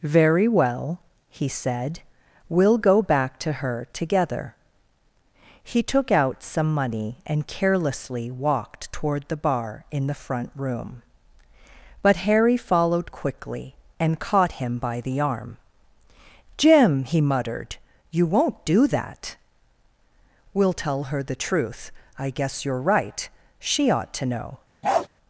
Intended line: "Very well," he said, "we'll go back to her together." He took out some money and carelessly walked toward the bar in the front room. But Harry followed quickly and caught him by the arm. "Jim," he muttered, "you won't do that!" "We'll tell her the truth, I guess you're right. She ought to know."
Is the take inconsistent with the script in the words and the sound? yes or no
yes